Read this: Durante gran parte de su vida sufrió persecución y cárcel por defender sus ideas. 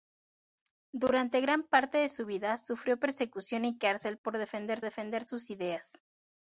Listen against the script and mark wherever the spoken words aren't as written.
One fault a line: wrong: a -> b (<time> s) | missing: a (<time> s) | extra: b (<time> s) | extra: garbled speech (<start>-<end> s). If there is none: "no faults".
extra: defender (4.8 s)